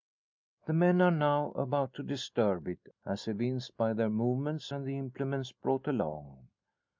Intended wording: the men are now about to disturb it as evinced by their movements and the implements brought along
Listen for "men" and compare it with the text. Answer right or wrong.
right